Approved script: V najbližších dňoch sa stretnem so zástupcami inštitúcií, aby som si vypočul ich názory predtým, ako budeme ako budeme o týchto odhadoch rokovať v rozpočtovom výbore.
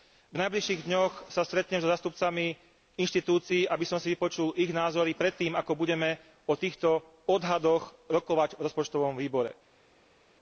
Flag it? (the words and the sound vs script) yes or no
yes